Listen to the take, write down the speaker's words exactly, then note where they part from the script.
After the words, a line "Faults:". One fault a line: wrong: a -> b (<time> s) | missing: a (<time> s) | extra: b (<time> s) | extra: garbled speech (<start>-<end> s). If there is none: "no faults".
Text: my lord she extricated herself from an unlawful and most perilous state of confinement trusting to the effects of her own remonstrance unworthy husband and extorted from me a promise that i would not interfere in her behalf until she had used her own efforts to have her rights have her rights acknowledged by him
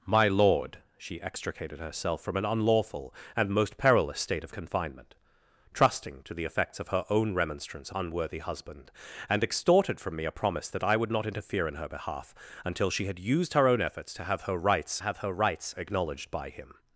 my lord she extricated herself from an unlawful and most perilous state of confinement trusting to the effects of her own remonstrance unworthy husband and extorted from me a promise that i would not interfere in her behalf until she had used her own efforts to have her rights have her rights acknowledged by him
Faults:
no faults